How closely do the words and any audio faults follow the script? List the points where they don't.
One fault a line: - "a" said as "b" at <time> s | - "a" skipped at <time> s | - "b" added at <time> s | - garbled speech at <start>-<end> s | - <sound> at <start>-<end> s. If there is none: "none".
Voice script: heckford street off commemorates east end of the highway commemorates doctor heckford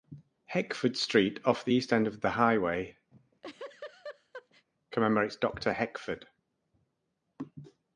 - "commemorates" said as "the" at 1.6 s
- laugh at 3.1-4.7 s